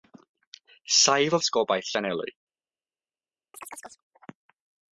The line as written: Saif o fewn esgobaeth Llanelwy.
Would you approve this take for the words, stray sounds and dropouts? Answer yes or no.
no